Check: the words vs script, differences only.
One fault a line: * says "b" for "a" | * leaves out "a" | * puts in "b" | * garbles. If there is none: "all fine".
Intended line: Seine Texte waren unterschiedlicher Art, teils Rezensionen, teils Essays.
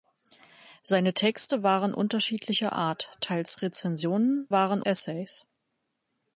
* says "waren" for "teils"